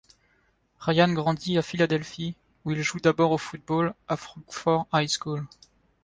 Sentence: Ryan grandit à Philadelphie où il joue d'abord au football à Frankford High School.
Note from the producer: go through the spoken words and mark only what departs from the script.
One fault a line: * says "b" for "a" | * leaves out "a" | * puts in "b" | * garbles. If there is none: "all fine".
all fine